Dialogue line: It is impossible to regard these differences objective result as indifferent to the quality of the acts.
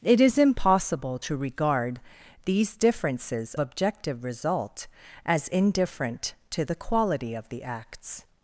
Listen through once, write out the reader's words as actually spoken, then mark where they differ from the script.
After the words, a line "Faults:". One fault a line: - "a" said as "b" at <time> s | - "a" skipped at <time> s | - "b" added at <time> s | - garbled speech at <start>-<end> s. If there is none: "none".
It is impossible to regard these differences objective result as indifferent to the quality of the acts.
Faults:
none